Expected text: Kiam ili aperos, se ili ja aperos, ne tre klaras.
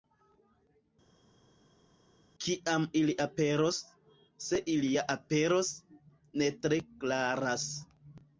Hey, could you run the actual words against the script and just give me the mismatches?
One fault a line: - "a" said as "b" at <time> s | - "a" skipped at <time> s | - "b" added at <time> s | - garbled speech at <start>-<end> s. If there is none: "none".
none